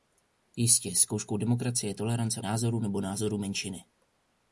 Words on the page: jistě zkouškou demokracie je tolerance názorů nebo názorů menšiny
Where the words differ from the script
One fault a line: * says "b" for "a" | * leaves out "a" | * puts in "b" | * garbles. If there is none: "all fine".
all fine